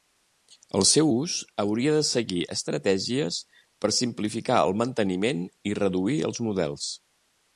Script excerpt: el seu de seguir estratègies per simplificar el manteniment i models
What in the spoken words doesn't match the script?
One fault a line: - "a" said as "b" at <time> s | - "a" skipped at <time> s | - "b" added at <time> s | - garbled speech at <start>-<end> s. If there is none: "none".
- "ús hauria" added at 1.1 s
- "reduir els" added at 5.8 s